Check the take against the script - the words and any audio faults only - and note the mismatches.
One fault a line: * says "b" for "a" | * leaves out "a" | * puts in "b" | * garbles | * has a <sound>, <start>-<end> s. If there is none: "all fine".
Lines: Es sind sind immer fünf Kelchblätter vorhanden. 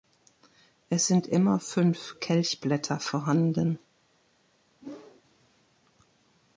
* leaves out "sind"
* has a whoosh, 4.8-5.2 s